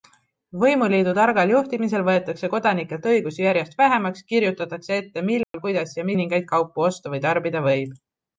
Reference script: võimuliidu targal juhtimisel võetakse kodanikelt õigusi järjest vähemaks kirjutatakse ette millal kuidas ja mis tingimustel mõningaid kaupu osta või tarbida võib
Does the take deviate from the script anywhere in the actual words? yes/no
yes